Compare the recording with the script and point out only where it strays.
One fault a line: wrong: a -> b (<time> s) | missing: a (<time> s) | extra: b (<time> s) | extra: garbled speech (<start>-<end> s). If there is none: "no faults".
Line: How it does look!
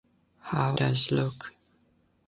missing: it (0.8 s)